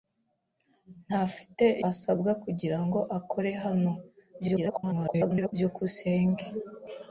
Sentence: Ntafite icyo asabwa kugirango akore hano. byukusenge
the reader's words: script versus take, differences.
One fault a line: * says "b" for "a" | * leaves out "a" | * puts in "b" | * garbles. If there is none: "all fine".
* leaves out "icyo"
* garbles